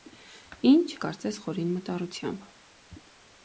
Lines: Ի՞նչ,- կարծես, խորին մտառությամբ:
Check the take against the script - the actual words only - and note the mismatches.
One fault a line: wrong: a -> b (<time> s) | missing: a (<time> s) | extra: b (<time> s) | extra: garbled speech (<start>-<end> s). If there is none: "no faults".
no faults